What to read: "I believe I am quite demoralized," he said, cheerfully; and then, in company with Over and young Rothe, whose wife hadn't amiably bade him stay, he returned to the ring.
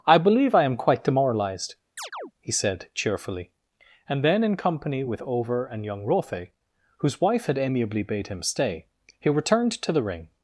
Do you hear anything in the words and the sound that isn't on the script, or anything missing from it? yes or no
yes